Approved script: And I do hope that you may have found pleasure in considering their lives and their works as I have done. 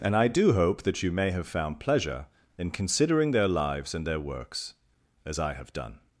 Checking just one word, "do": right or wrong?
right